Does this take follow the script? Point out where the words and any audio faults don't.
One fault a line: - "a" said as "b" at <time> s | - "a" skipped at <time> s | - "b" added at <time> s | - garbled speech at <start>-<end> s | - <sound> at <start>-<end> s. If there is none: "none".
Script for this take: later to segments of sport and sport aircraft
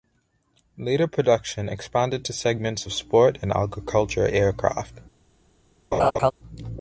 - "production expanded" added at 1.0 s
- "sport" said as "agriculture" at 3.5 s
- laugh at 5.9-6.3 s